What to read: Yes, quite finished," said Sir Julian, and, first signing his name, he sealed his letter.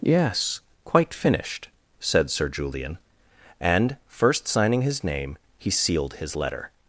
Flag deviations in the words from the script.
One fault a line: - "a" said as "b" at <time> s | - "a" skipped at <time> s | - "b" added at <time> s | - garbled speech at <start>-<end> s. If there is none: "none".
none